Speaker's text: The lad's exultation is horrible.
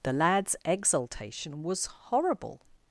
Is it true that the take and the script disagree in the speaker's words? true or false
true